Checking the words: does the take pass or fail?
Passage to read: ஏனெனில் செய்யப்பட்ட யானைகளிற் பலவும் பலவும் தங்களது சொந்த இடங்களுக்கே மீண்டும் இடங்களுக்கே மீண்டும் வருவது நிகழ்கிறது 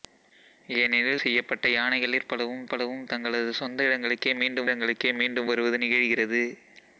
pass